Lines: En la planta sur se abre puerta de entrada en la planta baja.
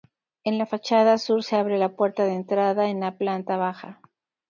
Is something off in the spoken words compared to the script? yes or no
yes